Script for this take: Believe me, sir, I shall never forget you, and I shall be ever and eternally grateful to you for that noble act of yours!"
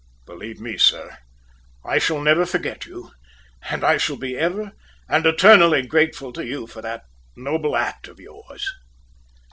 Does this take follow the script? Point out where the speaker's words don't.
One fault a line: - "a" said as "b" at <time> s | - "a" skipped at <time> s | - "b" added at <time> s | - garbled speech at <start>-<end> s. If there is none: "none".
none